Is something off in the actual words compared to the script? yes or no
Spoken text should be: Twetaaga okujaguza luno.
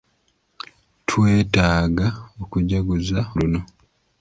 no